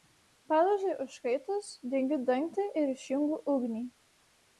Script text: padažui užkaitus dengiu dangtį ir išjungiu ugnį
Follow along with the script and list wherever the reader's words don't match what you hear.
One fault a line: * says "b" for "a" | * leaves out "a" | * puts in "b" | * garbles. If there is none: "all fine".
all fine